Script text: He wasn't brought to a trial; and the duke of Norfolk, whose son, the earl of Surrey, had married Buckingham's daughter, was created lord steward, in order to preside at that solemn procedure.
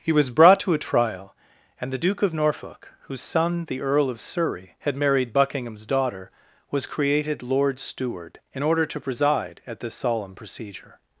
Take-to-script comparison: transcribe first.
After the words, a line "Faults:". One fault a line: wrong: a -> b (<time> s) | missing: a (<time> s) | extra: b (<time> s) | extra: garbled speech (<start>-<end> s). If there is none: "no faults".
He was brought to a trial; and the duke of Norfolk, whose son, the earl of Surrey, had married Buckingham's daughter, was created lord steward, in order to preside at this solemn procedure.
Faults:
wrong: wasn't -> was (0.1 s)
wrong: that -> this (9.8 s)